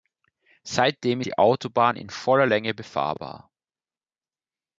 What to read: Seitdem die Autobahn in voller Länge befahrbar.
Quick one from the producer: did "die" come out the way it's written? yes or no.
yes